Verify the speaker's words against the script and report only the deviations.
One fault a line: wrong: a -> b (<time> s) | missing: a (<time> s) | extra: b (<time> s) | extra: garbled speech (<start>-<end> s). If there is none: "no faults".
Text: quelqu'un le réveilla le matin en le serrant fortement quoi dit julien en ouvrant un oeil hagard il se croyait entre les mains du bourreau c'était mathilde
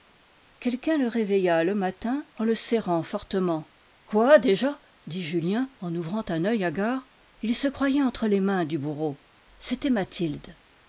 extra: déjà (4.4 s)